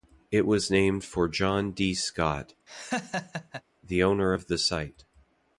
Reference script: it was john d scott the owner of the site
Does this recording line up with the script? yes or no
no